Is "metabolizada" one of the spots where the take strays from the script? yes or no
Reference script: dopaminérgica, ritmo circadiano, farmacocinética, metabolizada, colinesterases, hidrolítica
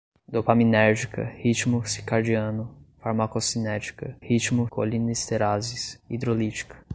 yes